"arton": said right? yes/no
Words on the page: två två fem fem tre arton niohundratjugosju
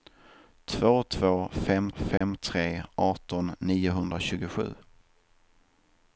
yes